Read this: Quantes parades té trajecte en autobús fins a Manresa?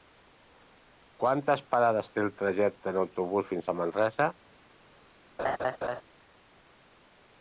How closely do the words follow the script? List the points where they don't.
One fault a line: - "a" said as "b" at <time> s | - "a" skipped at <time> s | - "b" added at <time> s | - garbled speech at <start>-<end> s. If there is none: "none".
- "el" added at 2.2 s